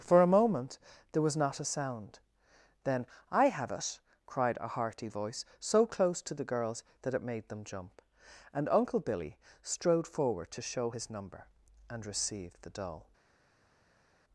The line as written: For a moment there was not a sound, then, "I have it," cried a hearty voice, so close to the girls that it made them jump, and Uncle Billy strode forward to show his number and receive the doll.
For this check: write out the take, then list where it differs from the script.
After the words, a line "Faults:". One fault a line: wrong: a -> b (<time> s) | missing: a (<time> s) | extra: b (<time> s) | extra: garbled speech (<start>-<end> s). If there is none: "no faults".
For a moment there was not a sound, then, "I have it," cried a hearty voice, so close to the girls that it made them jump, and Uncle Billy strode forward to show his number and receive the doll.
Faults:
no faults